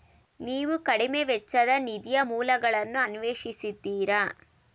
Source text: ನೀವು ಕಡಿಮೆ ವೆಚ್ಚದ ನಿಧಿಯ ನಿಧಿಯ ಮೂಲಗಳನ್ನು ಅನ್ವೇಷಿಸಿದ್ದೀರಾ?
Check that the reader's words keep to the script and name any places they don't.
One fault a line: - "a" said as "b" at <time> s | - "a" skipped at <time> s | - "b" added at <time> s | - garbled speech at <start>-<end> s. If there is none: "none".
- "ನಿಧಿಯ" skipped at 2.2 s